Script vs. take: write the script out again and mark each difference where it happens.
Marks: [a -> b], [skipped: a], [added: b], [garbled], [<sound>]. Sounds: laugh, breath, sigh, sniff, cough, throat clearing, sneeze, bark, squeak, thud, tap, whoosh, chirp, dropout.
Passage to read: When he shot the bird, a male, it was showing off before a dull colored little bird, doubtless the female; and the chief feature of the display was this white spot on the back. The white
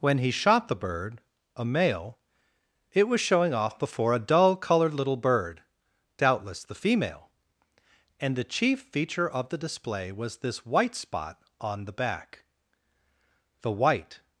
When he shot the bird, a male, it was showing off before a dull colored little bird, doubtless the female; and the chief feature of the display was this white spot on the back. The white